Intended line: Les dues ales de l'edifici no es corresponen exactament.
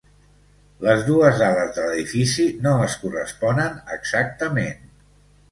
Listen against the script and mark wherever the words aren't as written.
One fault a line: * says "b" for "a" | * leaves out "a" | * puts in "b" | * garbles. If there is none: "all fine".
all fine